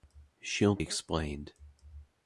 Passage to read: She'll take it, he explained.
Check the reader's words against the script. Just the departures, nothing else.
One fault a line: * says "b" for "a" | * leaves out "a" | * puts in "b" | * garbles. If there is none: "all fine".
* leaves out "take it he"